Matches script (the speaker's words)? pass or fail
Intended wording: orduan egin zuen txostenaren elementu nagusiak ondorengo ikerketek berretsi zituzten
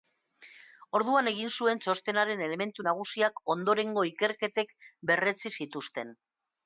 pass